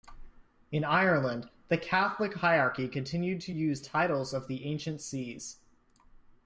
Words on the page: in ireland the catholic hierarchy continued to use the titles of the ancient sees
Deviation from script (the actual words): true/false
true